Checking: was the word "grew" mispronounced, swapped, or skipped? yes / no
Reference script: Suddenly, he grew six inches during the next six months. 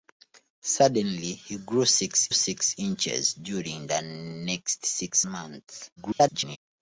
no